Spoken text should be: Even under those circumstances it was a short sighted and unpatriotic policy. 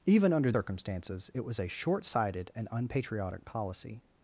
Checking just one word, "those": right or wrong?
wrong